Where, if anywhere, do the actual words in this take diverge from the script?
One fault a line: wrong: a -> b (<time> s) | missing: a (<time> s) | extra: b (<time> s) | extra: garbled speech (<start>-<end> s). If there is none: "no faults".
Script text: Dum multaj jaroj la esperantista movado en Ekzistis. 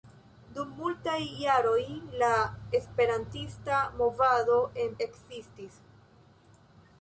no faults